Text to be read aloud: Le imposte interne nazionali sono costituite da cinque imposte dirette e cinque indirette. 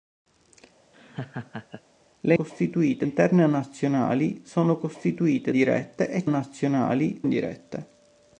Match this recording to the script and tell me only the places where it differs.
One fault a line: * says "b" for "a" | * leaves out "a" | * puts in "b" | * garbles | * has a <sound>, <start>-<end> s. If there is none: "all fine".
* has a laugh, 0.9-1.8 s
* says "costituite" for "imposte"
* leaves out "da cinque imposte"
* says "nazionali" for "cinque"